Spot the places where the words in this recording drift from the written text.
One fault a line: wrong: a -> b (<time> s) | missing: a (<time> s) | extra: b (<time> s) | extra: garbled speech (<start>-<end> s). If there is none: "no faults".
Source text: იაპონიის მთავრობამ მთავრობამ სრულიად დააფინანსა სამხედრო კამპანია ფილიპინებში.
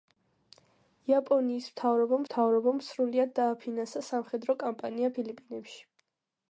no faults